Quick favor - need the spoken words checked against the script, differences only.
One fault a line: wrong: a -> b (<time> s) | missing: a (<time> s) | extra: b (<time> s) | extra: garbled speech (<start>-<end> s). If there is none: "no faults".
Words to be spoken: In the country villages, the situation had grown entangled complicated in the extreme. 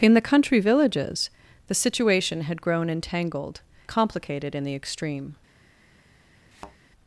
no faults